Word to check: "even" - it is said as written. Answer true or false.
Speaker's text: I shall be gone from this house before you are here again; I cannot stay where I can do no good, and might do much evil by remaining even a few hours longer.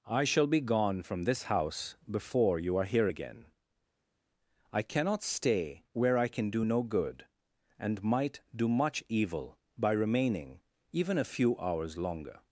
true